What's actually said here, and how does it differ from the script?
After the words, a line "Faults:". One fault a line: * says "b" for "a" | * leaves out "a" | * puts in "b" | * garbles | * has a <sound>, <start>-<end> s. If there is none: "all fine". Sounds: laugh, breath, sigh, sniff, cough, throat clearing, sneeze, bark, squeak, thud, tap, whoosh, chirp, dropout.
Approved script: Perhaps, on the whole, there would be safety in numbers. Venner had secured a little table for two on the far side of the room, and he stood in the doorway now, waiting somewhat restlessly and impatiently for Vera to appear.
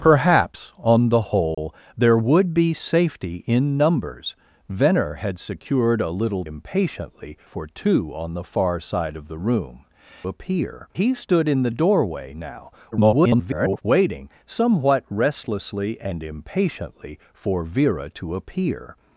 Perhaps, on the whole, there would be safety in numbers. Venner had secured a little impatiently for two on the far side of the room, appear he stood in the doorway now, [garbled] waiting somewhat restlessly and impatiently for Vera to appear.
Faults:
* has a dropout, 1.5-1.6 s
* says "impatiently" for "table"
* says "appear" for "and"
* garbles